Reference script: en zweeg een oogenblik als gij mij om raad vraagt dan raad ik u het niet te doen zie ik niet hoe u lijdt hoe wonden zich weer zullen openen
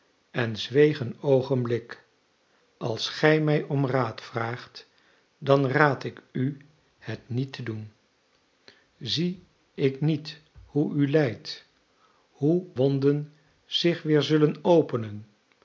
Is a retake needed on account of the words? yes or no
no